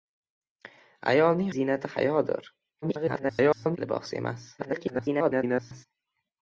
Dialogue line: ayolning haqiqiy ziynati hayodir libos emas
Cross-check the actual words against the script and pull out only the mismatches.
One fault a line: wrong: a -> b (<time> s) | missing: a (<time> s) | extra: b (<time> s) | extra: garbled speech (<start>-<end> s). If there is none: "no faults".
missing: haqiqiy (1.5 s)
extra: garbled speech (2.8-3.8 s)
extra: garbled speech (4.6-5.9 s)